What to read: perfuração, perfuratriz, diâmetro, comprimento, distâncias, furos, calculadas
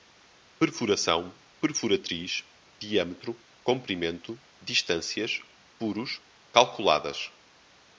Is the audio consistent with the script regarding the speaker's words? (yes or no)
yes